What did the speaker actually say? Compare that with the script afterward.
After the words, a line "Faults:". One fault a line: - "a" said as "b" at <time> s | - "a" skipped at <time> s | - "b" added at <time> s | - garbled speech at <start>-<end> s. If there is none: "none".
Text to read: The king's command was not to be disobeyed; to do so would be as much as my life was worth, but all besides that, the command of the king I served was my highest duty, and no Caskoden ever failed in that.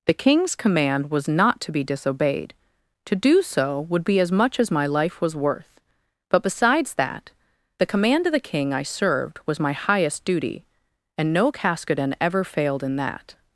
The king's command was not to be disobeyed; to do so would be as much as my life was worth, but besides that, the command of the king I served was my highest duty, and no Caskoden ever failed in that.
Faults:
- "all" skipped at 6.4 s